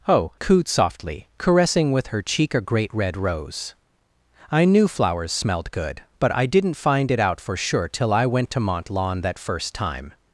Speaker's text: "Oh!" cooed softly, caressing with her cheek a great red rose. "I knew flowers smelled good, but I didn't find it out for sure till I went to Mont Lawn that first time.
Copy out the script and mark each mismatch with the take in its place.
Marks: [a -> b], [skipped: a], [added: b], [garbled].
"Oh!" cooed softly, caressing with her cheek a great red rose. "I knew flowers smelled good, but I didn't find it out for sure till I went to Mont Lawn that first time.